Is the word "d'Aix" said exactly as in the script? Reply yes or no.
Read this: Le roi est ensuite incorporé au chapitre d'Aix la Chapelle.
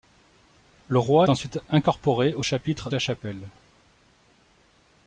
no